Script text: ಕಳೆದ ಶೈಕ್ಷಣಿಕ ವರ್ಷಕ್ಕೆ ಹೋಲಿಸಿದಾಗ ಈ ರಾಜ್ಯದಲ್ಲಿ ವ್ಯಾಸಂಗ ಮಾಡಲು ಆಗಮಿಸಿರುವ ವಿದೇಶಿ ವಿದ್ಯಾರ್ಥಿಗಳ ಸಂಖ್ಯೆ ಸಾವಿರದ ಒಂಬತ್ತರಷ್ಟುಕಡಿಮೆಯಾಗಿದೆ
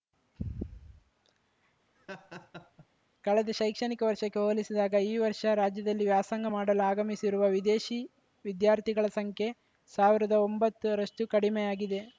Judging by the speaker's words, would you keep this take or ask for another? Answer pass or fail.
fail